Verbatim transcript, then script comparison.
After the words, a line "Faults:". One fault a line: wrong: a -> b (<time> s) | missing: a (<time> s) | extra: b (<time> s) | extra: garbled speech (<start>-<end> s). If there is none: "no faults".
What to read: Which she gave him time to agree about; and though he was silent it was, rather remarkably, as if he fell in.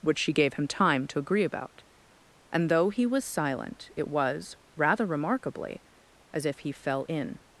Which she gave him time to agree about; and though he was silent it was, rather remarkably, as if he fell in.
Faults:
no faults